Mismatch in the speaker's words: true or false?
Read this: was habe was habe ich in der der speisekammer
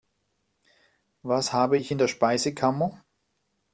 true